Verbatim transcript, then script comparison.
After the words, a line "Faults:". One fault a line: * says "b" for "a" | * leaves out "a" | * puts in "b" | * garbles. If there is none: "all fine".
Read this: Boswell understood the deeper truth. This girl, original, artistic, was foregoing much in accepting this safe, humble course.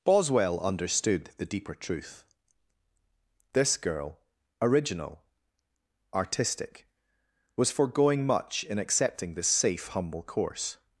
Boswell understood the deeper truth. This girl, original, artistic, was foregoing much in accepting this safe, humble course.
Faults:
all fine